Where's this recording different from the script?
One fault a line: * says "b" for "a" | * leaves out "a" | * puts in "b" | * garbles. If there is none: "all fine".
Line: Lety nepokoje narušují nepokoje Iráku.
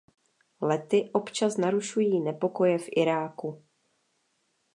* says "občas" for "nepokoje"
* puts in "v"